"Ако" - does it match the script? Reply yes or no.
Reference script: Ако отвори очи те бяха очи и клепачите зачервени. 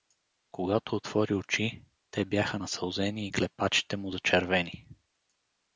no